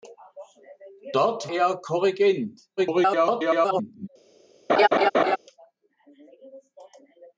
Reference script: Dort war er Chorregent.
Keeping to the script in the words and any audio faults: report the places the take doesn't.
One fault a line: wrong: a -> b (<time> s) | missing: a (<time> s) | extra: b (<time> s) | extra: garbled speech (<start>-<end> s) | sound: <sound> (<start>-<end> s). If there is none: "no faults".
missing: war (1.5 s)
extra: garbled speech (2.8-4.1 s)
sound: laugh (4.7-5.4 s)